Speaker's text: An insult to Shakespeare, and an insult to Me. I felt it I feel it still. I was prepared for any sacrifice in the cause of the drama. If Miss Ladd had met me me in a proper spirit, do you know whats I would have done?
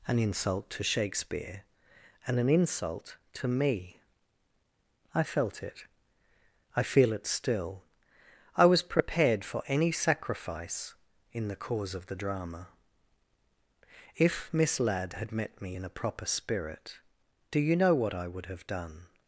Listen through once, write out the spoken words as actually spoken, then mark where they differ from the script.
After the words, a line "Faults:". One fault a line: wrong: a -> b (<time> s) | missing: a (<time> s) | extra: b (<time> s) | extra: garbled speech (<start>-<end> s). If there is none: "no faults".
An insult to Shakespeare, and an insult to Me. I felt it I feel it still. I was prepared for any sacrifice in the cause of the drama. If Miss Ladd had met me in a proper spirit, do you know what I would have done?
Faults:
missing: me (15.8 s)
wrong: whats -> what (17.9 s)